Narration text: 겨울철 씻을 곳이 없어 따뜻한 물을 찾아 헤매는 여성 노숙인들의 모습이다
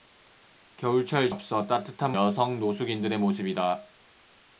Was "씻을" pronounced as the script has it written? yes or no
no